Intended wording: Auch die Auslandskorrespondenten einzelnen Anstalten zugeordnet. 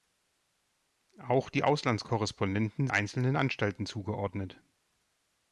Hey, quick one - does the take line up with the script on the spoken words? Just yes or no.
yes